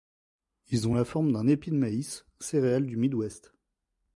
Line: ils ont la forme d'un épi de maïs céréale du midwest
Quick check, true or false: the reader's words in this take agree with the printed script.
true